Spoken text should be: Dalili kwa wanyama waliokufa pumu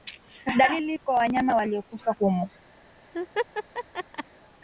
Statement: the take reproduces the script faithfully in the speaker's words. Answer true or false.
true